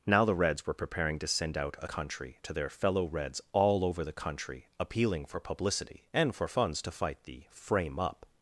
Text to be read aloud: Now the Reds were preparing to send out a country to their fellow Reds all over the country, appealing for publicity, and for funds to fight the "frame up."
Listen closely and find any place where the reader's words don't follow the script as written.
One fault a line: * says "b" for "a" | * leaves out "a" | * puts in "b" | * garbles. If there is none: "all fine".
all fine